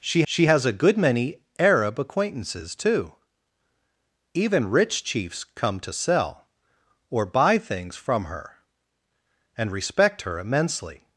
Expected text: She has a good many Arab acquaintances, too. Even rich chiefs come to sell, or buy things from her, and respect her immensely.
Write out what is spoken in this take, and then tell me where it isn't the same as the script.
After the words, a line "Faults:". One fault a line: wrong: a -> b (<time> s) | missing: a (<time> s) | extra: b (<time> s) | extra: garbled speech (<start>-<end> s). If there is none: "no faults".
She she has a good many Arab acquaintances, too. Even rich chiefs come to sell, or buy things from her, and respect her immensely.
Faults:
extra: she (0.3 s)